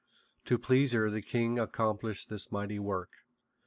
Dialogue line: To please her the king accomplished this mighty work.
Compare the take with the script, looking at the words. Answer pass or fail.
pass